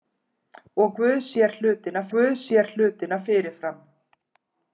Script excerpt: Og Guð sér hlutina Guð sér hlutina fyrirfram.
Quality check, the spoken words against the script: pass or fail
pass